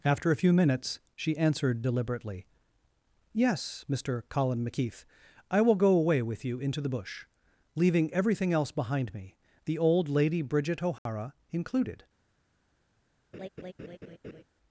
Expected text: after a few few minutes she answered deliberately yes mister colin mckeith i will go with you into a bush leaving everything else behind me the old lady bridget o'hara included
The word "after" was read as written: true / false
true